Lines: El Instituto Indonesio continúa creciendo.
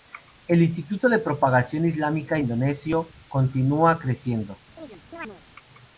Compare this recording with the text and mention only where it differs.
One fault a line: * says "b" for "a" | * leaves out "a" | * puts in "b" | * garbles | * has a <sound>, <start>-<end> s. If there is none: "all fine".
* puts in "de Propagación Islámica"
* has a chirp, 4.8-5.4 s